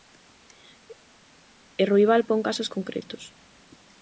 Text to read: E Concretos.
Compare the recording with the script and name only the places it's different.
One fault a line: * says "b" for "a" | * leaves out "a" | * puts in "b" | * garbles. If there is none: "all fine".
* puts in "Ruibal pon casos"